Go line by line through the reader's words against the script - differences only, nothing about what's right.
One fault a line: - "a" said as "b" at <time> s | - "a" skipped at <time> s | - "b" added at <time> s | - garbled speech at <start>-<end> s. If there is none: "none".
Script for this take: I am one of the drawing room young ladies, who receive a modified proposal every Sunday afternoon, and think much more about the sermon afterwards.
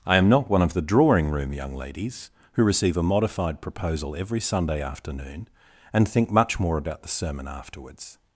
- "not" added at 0.3 s